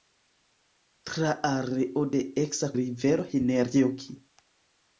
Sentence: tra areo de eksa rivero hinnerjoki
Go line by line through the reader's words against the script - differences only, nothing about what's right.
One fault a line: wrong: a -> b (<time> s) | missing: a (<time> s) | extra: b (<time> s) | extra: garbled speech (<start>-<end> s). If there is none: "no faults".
no faults